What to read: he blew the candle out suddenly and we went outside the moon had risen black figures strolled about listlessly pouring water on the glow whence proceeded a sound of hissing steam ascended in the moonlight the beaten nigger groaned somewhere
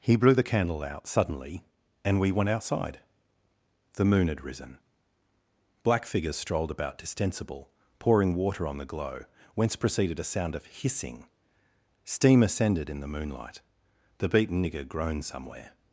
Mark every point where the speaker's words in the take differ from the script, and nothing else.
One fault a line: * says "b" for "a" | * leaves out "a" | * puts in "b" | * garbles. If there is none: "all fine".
* says "distensible" for "listlessly"